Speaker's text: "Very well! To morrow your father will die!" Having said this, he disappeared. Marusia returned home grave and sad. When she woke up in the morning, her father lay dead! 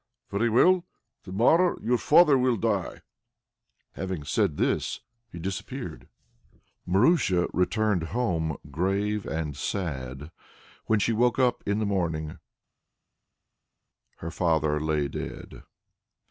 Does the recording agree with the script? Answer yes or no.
yes